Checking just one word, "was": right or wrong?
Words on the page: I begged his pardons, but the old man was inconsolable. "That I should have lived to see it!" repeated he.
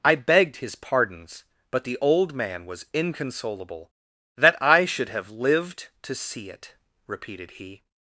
right